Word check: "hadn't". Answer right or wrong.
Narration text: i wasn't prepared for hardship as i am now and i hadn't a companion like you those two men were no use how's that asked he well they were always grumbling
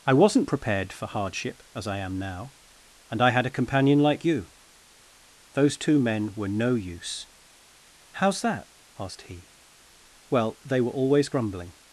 wrong